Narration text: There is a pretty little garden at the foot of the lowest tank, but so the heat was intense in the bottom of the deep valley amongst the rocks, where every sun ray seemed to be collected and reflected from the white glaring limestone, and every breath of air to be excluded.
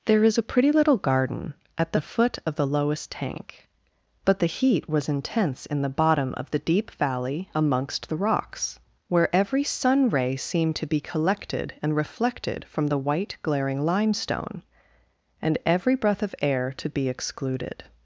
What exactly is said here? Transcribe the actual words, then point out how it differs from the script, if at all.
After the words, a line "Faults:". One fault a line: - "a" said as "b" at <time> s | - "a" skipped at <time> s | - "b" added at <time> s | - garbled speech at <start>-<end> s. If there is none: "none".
There is a pretty little garden at the foot of the lowest tank, but the heat was intense in the bottom of the deep valley amongst the rocks, where every sun ray seemed to be collected and reflected from the white glaring limestone, and every breath of air to be excluded.
Faults:
- "so" skipped at 4.4 s